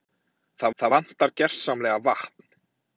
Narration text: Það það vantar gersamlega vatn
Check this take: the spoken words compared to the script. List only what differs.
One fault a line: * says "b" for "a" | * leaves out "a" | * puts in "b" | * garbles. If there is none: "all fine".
all fine